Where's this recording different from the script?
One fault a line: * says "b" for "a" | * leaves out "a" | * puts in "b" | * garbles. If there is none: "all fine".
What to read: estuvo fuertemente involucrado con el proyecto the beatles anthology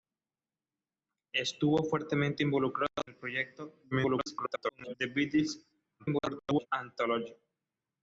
* leaves out "con"
* garbles
* garbles